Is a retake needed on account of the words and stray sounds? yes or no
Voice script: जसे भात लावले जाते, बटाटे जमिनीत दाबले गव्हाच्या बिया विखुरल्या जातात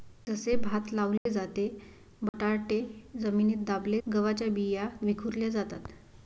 yes